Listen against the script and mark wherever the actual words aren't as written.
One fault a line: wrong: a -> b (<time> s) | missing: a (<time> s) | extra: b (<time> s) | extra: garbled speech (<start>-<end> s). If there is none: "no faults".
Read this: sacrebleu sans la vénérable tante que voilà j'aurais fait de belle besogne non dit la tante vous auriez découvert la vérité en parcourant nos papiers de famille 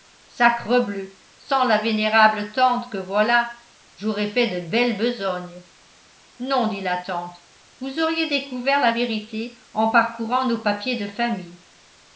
no faults